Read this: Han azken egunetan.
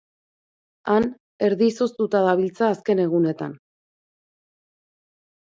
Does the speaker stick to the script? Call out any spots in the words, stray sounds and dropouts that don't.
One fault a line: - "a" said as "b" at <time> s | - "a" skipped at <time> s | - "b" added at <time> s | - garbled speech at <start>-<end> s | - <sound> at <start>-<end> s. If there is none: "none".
- "erdi izoztuta dabiltza" added at 1.5 s